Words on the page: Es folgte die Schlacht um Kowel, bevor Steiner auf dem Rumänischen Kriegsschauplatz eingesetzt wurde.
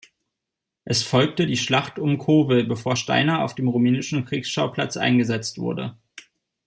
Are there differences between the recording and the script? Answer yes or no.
no